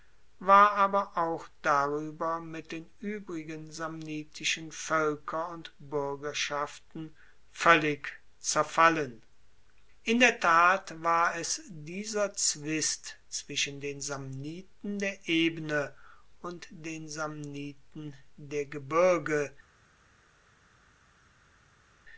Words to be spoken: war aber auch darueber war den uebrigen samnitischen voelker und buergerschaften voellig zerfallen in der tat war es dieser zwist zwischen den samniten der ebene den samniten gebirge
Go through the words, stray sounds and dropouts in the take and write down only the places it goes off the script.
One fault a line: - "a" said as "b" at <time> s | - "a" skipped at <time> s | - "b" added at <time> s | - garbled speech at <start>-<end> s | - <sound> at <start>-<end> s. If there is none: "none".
- "war" said as "mit" at 2.4 s
- "und" added at 16.4 s
- "der" added at 18.4 s